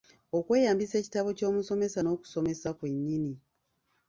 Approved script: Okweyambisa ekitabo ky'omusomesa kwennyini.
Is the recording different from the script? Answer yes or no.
yes